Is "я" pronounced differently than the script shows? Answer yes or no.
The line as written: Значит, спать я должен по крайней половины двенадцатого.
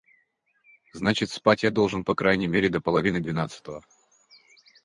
no